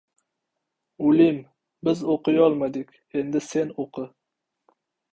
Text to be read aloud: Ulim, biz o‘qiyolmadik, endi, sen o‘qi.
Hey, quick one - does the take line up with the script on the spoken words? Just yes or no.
yes